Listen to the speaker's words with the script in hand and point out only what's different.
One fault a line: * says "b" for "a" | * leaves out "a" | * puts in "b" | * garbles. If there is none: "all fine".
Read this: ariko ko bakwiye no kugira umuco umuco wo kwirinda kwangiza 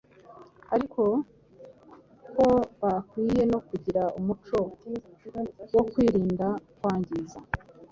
* leaves out "umuco"